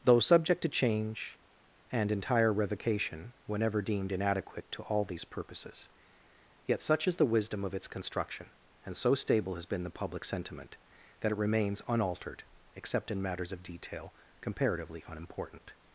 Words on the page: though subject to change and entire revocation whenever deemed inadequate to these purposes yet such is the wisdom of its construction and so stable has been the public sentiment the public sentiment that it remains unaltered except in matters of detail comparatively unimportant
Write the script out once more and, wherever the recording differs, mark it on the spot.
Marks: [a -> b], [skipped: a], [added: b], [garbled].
though subject to change and entire revocation whenever deemed inadequate to [added: all] these purposes yet such is the wisdom of its construction and so stable has been the public sentiment [skipped: the public sentiment] that it remains unaltered except in matters of detail comparatively unimportant